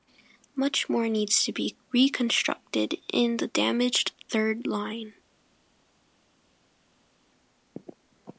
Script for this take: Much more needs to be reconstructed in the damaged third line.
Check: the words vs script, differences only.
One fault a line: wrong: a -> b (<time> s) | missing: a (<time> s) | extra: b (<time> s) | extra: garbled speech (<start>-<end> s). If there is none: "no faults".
no faults